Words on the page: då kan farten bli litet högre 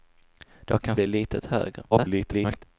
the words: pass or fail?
fail